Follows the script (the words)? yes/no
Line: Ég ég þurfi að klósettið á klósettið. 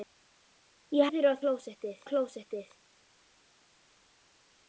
yes